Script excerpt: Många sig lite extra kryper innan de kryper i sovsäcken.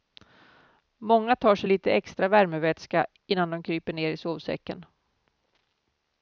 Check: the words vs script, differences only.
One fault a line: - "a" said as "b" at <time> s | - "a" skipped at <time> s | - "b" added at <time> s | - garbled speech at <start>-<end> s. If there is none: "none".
- "tar" added at 1.4 s
- "kryper" said as "värmevätska" at 2.3 s
- "ner" added at 3.9 s